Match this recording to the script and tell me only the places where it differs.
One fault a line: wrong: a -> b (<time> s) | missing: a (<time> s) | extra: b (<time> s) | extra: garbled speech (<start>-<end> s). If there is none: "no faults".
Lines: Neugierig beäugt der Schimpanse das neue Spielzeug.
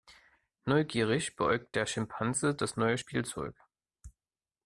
no faults